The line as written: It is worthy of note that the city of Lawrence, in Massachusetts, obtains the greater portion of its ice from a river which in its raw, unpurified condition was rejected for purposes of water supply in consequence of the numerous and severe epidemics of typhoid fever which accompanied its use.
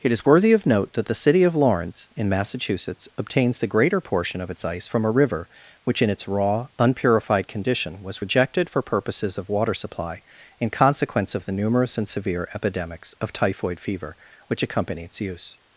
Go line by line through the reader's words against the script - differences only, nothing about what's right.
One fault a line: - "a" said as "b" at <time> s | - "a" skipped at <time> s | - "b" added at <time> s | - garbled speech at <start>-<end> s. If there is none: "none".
- "accompanied" said as "accompany" at 14.6 s